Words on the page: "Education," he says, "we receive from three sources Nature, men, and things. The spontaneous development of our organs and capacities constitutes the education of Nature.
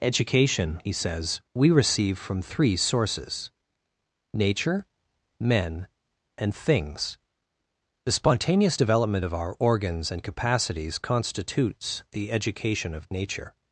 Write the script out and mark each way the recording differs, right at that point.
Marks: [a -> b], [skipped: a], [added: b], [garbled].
"Education," he says, "we receive from three sources Nature, men, and things. The spontaneous development of our organs and capacities constitutes the education of Nature.